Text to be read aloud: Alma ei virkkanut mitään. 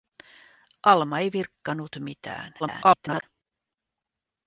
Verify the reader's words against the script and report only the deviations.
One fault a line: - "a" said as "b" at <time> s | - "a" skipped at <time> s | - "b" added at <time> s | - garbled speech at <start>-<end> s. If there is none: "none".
- garbled speech at 2.6-3.2 s